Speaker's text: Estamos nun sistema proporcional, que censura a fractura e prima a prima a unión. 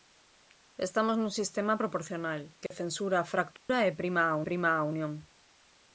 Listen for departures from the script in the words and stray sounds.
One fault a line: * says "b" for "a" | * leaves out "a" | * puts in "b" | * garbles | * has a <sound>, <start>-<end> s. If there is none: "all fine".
* has a dropout, 2.7-2.7 s
* has a dropout, 3.6-3.7 s